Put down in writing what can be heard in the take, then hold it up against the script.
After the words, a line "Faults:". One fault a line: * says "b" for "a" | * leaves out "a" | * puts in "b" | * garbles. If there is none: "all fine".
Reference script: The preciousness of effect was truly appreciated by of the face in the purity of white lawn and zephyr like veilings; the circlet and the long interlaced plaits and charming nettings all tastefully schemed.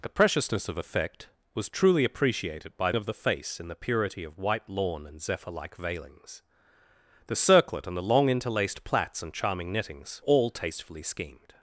The preciousness of effect was truly appreciated by of the face in the purity of white lawn and zephyr like veilings; the circlet and the long interlaced plaits and charming nettings all tastefully schemed.
Faults:
all fine